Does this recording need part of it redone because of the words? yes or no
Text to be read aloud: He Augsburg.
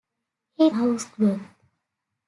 no